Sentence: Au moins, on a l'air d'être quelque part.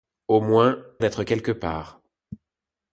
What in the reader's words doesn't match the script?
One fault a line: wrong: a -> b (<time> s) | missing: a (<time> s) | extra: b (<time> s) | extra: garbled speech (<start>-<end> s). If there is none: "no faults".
missing: on a l'air (0.8 s)